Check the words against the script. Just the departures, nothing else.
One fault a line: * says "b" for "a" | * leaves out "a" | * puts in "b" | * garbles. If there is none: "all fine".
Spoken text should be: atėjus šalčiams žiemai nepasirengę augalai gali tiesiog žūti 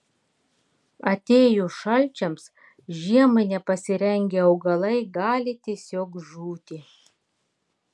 all fine